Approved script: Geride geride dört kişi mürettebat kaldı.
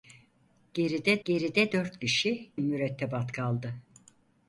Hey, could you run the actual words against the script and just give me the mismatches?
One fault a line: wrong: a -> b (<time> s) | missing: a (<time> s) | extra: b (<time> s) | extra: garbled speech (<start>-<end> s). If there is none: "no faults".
no faults